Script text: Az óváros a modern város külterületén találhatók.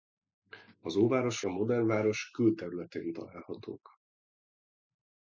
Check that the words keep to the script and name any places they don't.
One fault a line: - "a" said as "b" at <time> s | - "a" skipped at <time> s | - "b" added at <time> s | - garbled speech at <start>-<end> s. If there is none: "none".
none